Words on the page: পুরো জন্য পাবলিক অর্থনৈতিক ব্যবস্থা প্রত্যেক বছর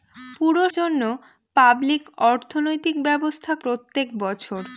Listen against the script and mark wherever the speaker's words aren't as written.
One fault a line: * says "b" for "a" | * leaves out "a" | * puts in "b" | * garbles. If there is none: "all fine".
all fine